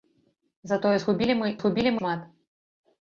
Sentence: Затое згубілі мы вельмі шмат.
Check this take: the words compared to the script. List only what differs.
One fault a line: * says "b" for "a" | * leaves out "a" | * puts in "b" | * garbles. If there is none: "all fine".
* says "згубілі" for "вельмі"